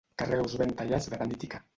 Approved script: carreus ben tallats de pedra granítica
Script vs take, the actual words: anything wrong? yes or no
yes